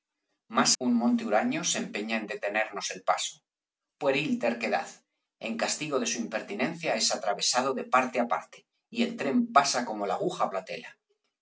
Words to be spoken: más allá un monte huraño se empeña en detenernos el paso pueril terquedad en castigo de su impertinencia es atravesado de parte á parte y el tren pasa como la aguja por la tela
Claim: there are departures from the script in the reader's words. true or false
true